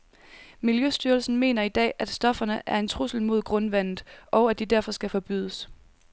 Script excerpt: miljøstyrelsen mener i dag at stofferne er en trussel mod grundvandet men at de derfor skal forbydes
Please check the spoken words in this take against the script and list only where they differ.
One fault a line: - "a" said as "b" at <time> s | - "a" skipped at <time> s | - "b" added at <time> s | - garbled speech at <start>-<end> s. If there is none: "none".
- "men" said as "og" at 4.3 s